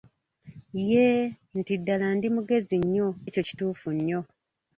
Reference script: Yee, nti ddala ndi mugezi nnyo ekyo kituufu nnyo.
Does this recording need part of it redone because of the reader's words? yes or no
no